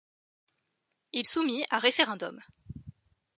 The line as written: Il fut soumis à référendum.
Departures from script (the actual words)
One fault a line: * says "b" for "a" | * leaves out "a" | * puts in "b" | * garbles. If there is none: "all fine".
* leaves out "fut"